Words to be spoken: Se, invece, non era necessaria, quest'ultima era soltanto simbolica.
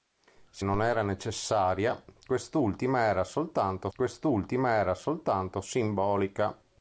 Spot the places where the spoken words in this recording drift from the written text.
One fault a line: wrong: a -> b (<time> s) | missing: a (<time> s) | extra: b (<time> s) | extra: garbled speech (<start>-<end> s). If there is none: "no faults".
missing: invece (0.7 s)
extra: quest'ultima era soltanto (3.9 s)